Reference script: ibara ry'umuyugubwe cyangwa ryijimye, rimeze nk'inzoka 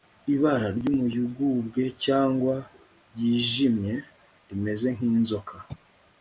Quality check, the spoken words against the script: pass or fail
pass